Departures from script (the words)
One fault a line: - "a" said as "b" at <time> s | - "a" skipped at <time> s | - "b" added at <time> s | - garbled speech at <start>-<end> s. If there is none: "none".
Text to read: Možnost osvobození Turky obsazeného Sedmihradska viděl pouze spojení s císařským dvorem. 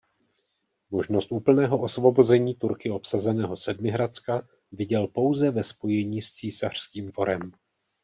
- "úplného" added at 1.3 s
- "ve" added at 5.5 s